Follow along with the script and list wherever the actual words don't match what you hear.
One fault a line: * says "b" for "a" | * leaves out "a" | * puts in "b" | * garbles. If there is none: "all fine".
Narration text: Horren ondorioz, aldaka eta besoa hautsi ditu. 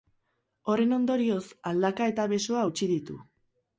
all fine